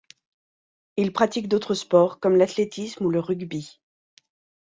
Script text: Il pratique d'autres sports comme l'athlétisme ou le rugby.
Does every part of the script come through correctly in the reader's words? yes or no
yes